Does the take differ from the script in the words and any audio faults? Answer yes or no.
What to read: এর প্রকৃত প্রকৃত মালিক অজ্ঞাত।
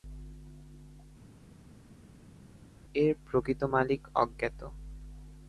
yes